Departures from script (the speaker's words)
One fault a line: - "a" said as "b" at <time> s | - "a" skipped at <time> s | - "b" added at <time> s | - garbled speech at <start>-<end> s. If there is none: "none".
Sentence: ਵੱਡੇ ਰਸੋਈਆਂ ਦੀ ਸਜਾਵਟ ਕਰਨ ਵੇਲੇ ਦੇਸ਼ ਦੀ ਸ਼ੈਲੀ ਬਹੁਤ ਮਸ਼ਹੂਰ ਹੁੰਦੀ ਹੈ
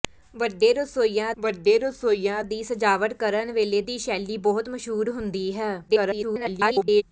- "ਵੱਡੇ ਰਸੋਈਆਂ" added at 1.4 s
- "ਦੇਸ਼" skipped at 3.8 s
- garbled speech at 5.9-7.0 s